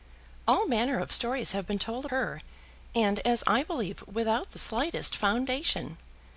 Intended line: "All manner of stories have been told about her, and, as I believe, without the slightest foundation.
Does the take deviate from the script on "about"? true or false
true